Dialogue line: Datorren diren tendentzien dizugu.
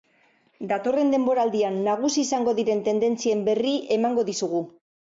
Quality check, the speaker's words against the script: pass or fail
fail